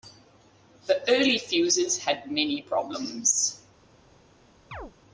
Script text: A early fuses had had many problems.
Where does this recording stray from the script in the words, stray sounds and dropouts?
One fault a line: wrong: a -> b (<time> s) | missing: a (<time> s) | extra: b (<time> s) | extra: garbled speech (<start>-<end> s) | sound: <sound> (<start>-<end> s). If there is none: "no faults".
wrong: A -> The (0.9 s)
missing: had (2.3 s)
sound: chirp (4.7-4.9 s)